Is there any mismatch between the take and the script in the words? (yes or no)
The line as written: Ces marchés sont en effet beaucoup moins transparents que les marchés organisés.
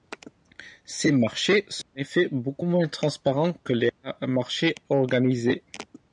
no